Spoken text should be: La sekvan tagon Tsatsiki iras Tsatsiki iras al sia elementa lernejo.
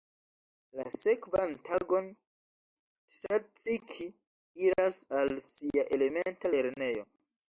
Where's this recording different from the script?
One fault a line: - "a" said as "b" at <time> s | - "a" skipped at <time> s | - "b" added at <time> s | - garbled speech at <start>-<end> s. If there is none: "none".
- "Tsatsiki iras" skipped at 5.0 s